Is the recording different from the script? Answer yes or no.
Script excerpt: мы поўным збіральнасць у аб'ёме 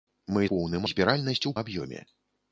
no